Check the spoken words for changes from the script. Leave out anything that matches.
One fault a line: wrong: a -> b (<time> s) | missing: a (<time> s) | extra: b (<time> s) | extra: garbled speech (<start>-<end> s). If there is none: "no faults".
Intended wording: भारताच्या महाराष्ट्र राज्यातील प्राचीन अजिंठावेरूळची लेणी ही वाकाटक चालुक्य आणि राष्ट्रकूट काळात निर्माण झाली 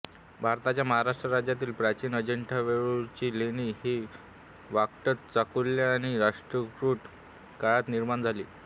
no faults